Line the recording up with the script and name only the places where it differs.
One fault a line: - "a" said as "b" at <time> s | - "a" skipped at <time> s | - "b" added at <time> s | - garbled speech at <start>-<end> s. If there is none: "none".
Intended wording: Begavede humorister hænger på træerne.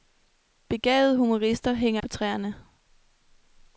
none